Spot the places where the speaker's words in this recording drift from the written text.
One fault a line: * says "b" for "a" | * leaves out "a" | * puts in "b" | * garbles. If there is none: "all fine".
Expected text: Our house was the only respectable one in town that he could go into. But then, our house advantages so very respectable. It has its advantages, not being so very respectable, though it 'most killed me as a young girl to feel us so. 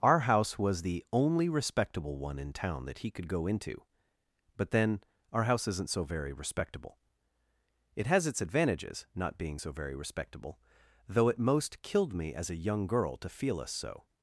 * says "isn't" for "advantages"